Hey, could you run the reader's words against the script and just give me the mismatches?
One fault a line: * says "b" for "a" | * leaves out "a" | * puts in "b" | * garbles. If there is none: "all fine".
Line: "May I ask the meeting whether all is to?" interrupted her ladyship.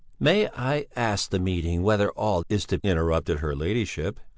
all fine